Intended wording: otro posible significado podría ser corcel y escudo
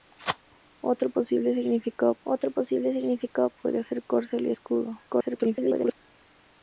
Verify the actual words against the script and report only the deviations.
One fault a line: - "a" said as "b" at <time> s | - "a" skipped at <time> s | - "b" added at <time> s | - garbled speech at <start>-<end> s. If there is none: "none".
- "otro posible significado" added at 2.2 s
- garbled speech at 5.1-5.9 s